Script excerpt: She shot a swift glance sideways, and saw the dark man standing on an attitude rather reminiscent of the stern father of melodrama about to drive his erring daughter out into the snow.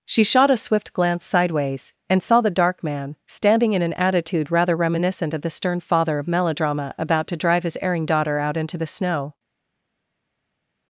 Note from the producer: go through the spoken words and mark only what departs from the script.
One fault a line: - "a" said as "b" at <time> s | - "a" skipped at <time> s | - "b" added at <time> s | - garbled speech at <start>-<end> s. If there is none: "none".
- "on" said as "in" at 3.7 s